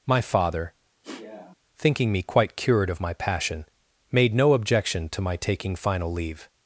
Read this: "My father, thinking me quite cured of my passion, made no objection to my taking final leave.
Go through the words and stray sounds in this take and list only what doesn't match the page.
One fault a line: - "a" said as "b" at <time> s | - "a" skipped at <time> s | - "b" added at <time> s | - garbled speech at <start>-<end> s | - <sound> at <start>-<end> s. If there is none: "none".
- sniff at 1.0-1.5 s